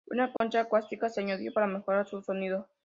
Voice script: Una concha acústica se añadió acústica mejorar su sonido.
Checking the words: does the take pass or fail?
fail